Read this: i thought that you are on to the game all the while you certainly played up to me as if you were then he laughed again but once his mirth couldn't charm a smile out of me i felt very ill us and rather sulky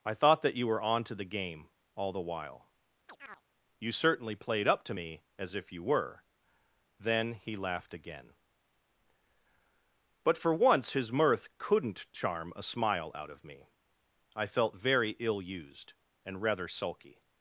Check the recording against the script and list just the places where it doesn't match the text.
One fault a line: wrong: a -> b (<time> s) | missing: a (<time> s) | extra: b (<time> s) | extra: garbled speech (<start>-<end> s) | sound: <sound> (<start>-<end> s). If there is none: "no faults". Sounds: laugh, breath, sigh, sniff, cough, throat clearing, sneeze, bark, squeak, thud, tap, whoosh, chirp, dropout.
wrong: are -> were (0.7 s)
sound: chirp (3.1-3.4 s)
extra: for (10.4 s)
wrong: us -> used (15.4 s)